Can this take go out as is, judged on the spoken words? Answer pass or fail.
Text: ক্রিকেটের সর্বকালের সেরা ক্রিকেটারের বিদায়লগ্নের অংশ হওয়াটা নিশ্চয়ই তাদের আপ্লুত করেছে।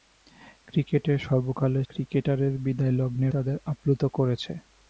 fail